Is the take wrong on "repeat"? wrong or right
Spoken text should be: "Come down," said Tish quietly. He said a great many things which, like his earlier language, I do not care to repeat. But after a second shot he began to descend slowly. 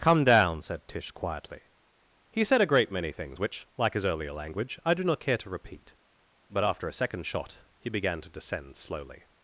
right